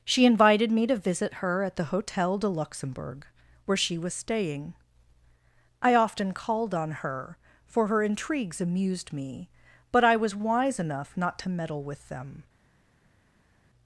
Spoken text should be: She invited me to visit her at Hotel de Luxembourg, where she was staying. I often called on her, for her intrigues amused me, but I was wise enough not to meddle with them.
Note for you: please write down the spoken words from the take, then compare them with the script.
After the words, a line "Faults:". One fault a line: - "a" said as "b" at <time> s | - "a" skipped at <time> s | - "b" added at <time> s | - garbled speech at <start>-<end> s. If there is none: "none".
She invited me to visit her at the Hotel de Luxembourg, where she was staying. I often called on her, for her intrigues amused me, but I was wise enough not to meddle with them.
Faults:
- "the" added at 1.8 s